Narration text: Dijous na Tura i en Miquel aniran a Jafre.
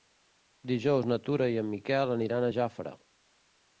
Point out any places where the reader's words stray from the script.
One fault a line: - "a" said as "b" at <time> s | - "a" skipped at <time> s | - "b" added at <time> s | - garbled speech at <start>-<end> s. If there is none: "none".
none